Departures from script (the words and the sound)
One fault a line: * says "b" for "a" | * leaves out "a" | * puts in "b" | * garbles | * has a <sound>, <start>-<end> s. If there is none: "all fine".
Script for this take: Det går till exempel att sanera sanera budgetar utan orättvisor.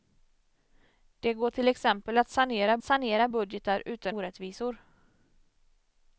all fine